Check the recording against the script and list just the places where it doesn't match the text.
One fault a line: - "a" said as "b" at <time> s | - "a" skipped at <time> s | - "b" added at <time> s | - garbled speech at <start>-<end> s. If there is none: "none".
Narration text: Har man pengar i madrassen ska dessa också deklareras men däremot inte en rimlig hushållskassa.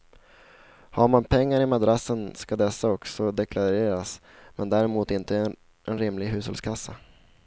none